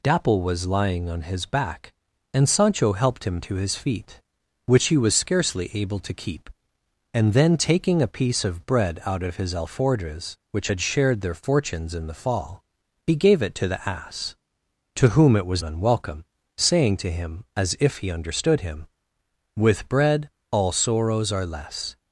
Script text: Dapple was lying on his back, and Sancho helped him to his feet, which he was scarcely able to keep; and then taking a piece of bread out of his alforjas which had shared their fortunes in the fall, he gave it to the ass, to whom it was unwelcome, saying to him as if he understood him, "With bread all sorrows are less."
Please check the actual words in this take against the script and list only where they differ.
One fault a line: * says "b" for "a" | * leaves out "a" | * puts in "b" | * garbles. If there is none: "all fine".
all fine